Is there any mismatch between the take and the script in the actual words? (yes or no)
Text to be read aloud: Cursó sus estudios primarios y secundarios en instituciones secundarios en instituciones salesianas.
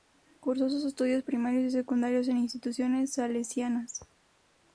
yes